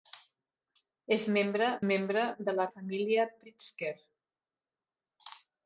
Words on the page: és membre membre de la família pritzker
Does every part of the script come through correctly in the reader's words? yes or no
yes